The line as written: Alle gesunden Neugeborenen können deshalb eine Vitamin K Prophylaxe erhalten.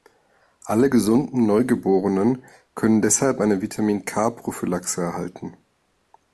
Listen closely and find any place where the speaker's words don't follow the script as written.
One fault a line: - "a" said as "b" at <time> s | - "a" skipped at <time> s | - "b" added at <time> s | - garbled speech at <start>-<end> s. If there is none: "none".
none